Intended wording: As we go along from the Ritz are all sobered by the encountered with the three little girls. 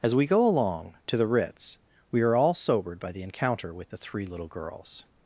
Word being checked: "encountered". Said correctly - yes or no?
no